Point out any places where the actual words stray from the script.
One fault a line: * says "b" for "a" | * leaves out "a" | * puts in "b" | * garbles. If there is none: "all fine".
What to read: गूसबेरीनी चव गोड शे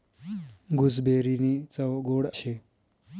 all fine